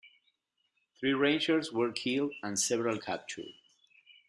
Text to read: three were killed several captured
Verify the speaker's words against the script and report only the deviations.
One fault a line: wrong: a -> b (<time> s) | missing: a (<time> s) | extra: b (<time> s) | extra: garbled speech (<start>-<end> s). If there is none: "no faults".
extra: rangers (1.1 s)
extra: and (2.4 s)